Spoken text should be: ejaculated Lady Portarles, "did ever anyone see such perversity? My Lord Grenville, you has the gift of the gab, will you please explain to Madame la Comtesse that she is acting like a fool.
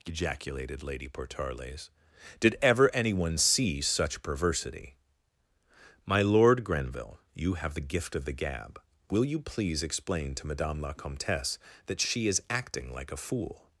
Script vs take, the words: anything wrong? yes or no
yes